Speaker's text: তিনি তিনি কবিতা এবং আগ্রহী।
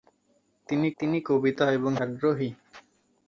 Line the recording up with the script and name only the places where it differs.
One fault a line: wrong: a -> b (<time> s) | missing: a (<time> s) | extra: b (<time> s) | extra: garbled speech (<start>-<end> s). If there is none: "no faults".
no faults